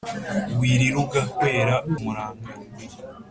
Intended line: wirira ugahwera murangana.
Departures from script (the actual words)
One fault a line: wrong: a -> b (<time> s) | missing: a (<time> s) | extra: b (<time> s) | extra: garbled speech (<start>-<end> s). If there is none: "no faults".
no faults